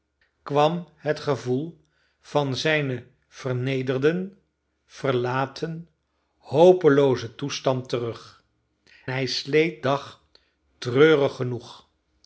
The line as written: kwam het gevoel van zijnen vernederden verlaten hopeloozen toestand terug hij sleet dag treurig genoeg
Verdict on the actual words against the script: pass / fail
pass